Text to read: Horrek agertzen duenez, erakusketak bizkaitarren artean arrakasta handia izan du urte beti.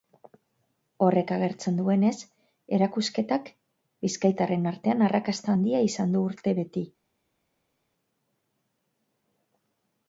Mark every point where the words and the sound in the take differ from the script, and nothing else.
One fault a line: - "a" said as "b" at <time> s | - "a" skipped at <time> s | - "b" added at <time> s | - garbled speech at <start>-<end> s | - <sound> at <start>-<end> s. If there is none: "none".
none